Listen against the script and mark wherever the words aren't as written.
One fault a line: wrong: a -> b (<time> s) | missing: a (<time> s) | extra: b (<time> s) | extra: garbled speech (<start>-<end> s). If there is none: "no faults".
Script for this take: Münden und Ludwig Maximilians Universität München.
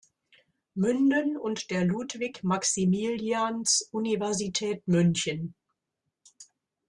extra: der (1.7 s)